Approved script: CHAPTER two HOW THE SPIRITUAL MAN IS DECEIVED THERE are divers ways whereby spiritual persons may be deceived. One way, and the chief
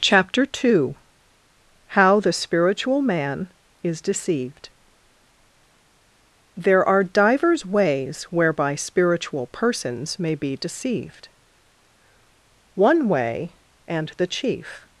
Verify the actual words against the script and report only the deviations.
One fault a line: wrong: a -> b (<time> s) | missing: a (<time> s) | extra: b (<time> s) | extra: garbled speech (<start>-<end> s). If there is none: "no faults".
no faults